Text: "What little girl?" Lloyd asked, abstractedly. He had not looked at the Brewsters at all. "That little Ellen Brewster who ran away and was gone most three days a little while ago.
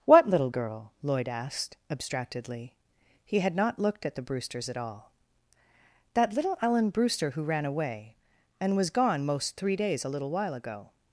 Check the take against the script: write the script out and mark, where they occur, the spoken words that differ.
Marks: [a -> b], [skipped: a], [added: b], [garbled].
"What little girl?" Lloyd asked, abstractedly. He had not looked at the Brewsters at all. "That little Ellen Brewster who ran away and was gone most three days a little while ago.